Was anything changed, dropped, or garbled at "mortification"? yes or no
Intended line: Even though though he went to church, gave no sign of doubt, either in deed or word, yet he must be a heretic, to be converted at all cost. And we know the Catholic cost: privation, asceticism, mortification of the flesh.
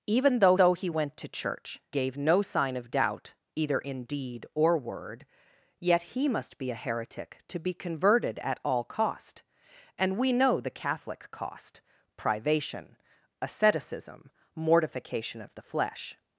no